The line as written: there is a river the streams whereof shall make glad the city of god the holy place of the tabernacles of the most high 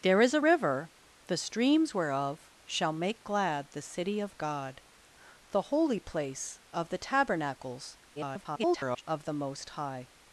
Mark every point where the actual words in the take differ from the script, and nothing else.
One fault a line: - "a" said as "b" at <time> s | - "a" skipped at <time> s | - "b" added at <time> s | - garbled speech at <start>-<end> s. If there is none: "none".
- garbled speech at 8.2-9.0 s